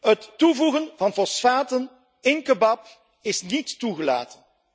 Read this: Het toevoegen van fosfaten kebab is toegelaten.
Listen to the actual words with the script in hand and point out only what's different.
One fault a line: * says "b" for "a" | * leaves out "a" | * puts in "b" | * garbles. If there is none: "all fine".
* puts in "in"
* puts in "niet"